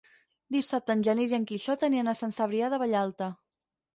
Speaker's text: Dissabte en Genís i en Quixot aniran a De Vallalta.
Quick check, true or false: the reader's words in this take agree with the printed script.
false